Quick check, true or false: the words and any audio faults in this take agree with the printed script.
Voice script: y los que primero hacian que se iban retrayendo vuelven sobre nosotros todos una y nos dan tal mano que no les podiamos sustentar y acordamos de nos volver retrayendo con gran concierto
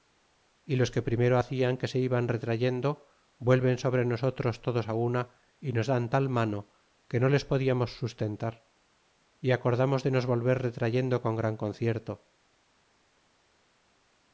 true